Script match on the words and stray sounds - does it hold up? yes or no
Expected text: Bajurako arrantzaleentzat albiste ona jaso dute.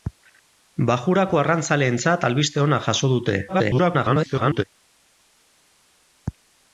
no